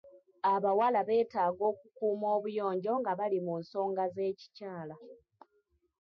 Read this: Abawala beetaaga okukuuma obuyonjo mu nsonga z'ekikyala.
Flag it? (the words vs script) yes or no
yes